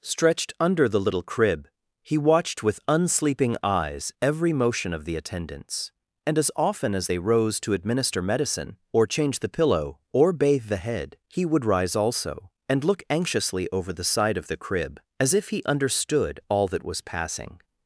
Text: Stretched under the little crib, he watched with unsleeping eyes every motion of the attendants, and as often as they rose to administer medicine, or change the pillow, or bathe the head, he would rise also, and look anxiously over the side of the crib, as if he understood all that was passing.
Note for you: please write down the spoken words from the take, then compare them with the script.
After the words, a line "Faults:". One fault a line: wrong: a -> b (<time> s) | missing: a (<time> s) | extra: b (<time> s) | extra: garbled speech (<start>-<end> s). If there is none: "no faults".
Stretched under the little crib, he watched with unsleeping eyes every motion of the attendants, and as often as they rose to administer medicine, or change the pillow, or bathe the head, he would rise also, and look anxiously over the side of the crib, as if he understood all that was passing.
Faults:
no faults